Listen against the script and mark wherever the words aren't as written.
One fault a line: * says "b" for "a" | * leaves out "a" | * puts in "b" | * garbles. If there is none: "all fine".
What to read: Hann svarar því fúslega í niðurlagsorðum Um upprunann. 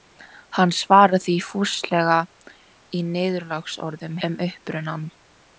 all fine